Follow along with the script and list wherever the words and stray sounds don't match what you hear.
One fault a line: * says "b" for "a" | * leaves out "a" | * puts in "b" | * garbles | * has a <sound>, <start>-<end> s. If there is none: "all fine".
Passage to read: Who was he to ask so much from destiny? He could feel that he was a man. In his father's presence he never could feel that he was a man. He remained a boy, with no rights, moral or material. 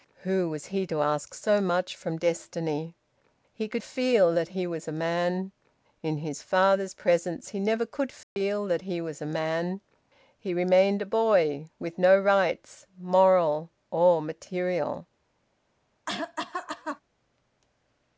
* has a dropout, 8.2-8.4 s
* has a cough, 16.1-17.0 s